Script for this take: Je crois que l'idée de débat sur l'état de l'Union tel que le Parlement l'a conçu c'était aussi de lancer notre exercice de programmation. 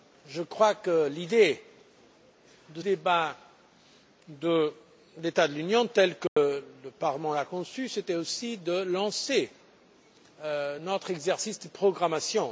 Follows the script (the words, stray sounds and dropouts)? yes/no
no